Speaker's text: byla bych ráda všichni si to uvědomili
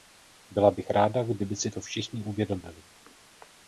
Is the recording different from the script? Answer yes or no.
yes